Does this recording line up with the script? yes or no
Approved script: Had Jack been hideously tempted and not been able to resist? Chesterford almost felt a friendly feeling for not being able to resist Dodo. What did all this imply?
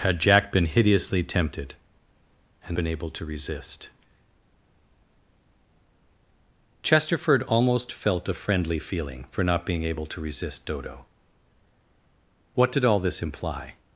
no